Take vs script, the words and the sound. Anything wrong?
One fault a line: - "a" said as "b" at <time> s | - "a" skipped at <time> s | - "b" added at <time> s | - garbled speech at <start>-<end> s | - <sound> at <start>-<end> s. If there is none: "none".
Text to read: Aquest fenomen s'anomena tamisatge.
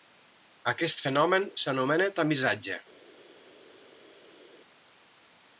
none